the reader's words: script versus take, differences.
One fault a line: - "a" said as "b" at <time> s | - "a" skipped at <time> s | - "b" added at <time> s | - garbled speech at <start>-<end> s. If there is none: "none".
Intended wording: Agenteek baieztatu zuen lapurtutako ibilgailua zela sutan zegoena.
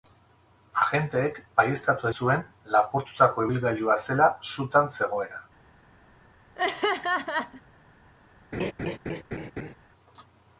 none